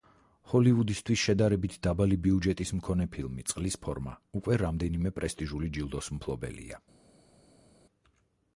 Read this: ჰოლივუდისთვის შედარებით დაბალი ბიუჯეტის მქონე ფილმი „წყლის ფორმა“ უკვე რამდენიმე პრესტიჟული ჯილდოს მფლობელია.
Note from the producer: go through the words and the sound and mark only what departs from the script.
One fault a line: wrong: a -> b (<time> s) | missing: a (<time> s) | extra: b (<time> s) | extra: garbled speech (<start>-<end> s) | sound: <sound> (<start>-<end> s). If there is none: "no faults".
no faults